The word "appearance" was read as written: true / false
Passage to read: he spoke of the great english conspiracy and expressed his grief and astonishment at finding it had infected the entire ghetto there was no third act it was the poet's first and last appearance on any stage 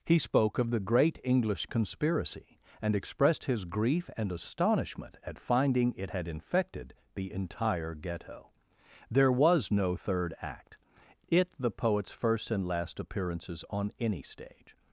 false